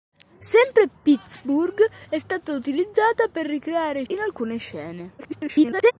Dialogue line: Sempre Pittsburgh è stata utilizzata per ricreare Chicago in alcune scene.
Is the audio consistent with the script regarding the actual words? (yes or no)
no